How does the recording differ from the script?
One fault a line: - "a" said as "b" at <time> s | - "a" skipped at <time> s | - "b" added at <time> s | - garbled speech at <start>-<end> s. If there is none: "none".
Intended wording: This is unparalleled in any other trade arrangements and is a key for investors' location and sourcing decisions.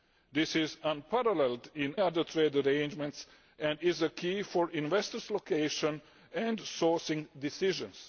- "any" skipped at 1.9 s